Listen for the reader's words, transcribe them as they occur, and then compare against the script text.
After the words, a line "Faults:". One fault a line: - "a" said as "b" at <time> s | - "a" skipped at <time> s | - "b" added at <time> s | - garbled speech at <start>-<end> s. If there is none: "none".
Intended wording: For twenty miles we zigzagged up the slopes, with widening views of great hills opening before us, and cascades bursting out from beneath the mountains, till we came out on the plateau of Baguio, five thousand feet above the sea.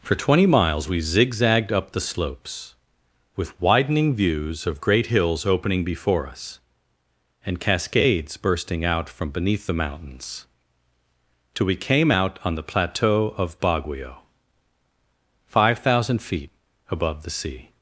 For twenty miles we zigzagged up the slopes, with widening views of great hills opening before us, and cascades bursting out from beneath the mountains, till we came out on the plateau of Baguio, five thousand feet above the sea.
Faults:
none